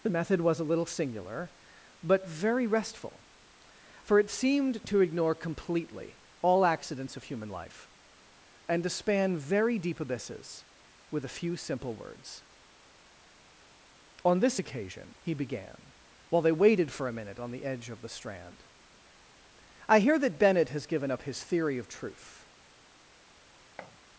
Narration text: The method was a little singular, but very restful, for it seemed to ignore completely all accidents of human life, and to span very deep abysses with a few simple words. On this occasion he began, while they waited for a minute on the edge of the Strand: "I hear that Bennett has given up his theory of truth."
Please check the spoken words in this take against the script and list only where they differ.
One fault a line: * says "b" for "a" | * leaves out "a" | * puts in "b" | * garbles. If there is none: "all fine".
all fine